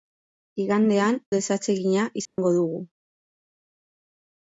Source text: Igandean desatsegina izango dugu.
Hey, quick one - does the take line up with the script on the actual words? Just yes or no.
yes